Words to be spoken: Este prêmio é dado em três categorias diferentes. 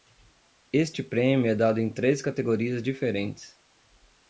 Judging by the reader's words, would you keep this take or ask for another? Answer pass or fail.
pass